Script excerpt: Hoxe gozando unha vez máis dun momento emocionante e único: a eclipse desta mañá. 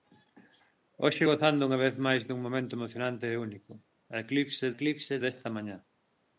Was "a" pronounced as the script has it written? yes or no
yes